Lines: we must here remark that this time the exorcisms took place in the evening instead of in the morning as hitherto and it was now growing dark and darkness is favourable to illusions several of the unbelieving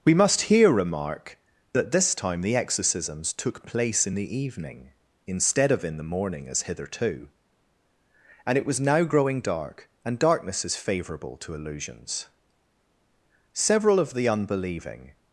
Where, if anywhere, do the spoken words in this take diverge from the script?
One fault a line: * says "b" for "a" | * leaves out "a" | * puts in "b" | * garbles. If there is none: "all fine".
all fine